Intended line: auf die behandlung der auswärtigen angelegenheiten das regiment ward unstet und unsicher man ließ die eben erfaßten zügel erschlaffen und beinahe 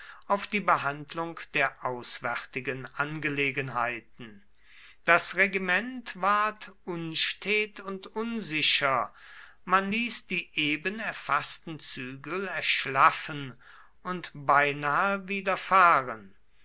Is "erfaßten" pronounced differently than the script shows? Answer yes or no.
no